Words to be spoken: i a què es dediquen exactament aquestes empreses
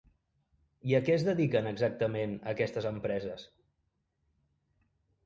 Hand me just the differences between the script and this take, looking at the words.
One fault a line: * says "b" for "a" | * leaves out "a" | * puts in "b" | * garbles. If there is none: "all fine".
all fine